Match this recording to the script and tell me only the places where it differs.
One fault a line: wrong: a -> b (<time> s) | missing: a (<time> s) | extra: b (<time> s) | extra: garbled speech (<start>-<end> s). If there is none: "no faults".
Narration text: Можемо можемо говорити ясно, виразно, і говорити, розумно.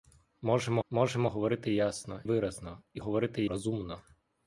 no faults